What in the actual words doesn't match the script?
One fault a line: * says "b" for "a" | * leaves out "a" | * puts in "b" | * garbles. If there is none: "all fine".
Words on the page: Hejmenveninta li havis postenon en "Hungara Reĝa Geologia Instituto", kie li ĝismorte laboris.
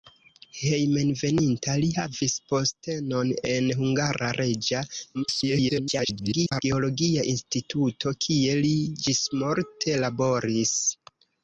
* garbles